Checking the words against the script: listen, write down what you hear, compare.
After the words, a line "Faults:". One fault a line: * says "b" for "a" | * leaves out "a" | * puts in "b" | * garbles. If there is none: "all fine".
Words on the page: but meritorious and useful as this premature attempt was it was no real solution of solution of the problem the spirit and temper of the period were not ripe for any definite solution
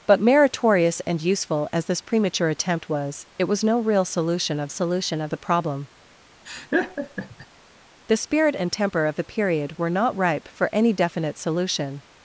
but meritorious and useful as this premature attempt was it was no real solution of solution of the problem the spirit and temper of the period were not ripe for any definite solution
Faults:
all fine